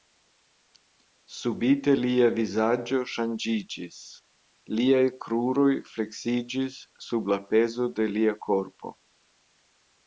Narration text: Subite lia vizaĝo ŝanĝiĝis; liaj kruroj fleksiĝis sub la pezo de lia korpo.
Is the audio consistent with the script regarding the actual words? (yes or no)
yes